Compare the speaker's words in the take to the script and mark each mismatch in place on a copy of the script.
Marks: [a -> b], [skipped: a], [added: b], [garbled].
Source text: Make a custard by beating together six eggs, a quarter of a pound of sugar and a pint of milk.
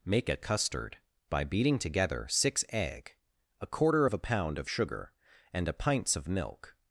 Make a custard by beating together six [eggs, -> egg] a quarter of a pound of sugar and a [pint -> pints] of milk.